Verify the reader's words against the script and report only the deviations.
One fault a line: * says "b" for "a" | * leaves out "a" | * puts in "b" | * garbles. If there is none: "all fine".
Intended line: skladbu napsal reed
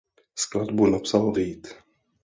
all fine